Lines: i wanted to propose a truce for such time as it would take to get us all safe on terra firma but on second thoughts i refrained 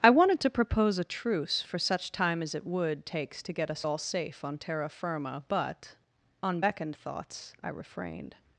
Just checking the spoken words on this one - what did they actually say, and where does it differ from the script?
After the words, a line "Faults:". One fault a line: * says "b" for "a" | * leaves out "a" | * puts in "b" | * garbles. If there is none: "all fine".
i wanted to propose a truce for such time as it would takes to get us all safe on terra firma but on beckoned thoughts i refrained
Faults:
* says "takes" for "take"
* says "beckoned" for "second"